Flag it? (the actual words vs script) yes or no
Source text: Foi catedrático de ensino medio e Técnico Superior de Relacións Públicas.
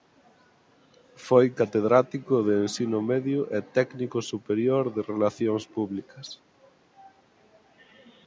no